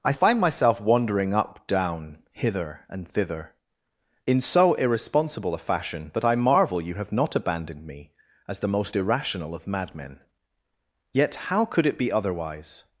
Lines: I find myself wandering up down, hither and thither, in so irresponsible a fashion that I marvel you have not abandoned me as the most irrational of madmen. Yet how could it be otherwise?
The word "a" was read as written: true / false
true